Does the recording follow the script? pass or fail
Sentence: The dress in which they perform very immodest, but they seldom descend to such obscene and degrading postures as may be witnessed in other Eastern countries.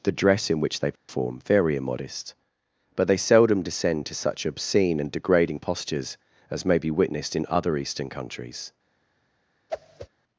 pass